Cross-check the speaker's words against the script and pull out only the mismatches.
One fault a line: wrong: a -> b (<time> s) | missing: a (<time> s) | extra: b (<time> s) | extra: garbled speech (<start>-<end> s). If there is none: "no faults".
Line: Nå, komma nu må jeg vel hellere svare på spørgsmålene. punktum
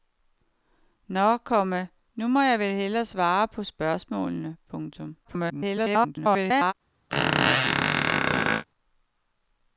extra: garbled speech (5.2-6.7 s)